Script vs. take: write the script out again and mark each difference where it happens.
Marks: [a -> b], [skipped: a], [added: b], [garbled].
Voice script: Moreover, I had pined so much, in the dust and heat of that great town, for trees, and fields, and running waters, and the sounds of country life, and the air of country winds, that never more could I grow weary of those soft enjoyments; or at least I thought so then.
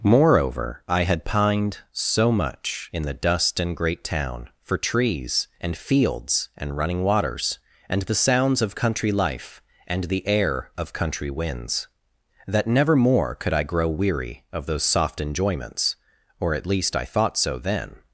Moreover, I had pined so much, in the dust and [skipped: heat of that] great town, for trees, and fields, and running waters, and the sounds of country life, and the air of country winds, that never more could I grow weary of those soft enjoyments; or at least I thought so then.